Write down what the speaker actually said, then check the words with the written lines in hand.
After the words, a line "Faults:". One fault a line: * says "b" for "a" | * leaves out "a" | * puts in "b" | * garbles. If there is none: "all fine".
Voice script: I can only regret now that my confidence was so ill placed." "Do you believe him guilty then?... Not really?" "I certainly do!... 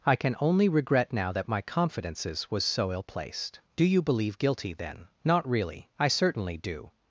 I can only regret now that my confidences was so ill placed." "Do you believe guilty then?... Not really?" "I certainly do!...
Faults:
* says "confidences" for "confidence"
* leaves out "him"